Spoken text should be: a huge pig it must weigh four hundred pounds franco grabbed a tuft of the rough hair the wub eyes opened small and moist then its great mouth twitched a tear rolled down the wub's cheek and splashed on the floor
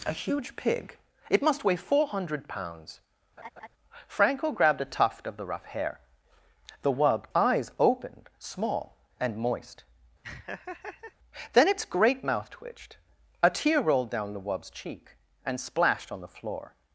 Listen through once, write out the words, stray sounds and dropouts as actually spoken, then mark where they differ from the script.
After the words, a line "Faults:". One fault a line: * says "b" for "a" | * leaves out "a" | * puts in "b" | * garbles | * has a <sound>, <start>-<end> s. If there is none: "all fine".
a huge pig it must weigh four hundred pounds franco grabbed a tuft of the rough hair the wub eyes opened small and moist then its great mouth twitched a tear rolled down the wub's cheek and splashed on the floor
Faults:
* has a laugh, 3.4-3.7 s
* has a laugh, 10.2-11.2 s